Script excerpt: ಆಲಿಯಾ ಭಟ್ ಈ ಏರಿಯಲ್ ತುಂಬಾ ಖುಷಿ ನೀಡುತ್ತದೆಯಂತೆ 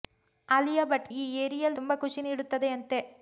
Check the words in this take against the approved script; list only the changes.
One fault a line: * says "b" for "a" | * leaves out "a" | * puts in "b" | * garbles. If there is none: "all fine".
all fine